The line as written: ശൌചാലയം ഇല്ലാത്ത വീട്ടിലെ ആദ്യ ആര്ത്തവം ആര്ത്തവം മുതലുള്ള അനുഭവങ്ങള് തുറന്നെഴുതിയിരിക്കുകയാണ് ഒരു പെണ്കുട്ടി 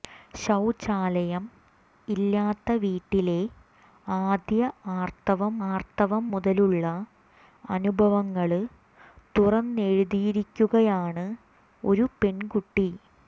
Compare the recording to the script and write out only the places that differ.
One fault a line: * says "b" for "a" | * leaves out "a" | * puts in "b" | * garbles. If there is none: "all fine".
all fine